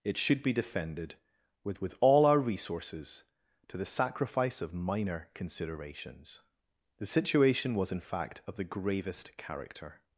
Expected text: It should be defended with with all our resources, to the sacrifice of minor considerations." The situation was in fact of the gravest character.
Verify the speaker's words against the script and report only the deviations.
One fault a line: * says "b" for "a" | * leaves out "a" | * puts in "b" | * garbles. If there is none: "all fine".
all fine